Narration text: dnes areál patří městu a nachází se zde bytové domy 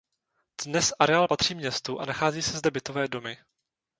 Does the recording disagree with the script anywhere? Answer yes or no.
no